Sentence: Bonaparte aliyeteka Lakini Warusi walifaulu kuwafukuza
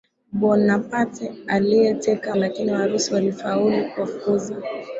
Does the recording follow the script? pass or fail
pass